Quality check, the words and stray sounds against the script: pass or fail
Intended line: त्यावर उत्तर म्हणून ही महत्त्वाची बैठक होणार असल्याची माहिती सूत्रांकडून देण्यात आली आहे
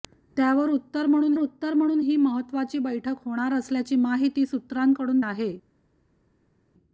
fail